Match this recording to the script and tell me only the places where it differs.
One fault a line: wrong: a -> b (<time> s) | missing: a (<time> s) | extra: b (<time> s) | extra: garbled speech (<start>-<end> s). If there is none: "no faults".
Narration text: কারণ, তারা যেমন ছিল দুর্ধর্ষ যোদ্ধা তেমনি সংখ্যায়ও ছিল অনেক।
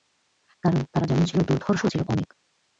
missing: যোদ্ধা তেমনি সংখ্যায়ও (1.8 s)